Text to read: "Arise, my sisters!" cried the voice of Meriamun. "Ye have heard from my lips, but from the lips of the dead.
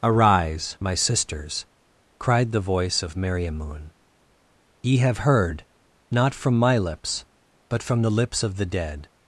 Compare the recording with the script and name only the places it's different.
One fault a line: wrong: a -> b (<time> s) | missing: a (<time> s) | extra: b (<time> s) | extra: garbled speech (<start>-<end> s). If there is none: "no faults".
extra: not (6.1 s)